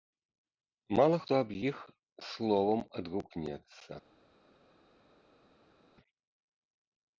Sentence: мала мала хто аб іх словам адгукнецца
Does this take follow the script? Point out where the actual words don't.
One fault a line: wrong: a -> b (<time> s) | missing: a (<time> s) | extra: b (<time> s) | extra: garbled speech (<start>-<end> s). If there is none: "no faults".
missing: мала (1.2 s)